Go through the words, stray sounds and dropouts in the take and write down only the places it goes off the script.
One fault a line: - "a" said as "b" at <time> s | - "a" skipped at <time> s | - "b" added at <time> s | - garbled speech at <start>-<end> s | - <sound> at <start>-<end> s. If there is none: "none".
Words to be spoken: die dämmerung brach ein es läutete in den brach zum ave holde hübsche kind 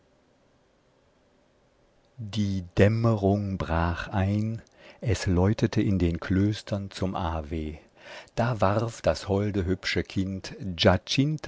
- "brach" said as "klöstern" at 6.2 s
- "da warf das" added at 8.3 s